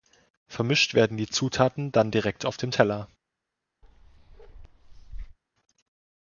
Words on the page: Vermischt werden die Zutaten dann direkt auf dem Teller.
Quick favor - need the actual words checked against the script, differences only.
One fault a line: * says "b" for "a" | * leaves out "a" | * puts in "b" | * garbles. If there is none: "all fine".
all fine